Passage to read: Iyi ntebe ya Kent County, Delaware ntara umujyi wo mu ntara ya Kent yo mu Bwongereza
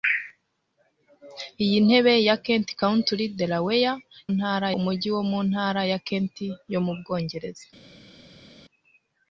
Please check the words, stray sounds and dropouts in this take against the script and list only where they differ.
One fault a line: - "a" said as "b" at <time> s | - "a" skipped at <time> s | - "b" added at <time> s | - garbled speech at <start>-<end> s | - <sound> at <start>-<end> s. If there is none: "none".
none